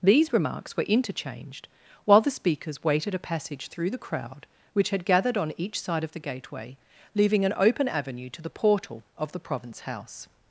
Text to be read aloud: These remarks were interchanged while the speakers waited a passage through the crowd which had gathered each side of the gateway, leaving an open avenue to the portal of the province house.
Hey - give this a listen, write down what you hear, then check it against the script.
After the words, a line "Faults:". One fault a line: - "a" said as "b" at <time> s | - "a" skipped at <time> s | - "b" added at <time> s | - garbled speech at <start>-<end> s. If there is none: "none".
These remarks were interchanged while the speakers waited a passage through the crowd which had gathered on each side of the gateway, leaving an open avenue to the portal of the province house.
Faults:
- "on" added at 5.4 s